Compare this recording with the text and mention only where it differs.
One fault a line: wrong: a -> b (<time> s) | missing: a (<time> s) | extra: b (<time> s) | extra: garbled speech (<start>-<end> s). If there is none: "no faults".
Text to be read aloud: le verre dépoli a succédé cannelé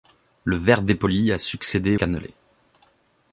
no faults